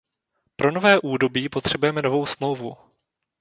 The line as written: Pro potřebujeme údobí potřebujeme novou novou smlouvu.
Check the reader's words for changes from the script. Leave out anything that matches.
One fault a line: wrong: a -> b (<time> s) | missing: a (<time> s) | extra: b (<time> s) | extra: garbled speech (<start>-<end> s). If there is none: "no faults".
wrong: potřebujeme -> nové (0.7 s)
missing: novou (2.3 s)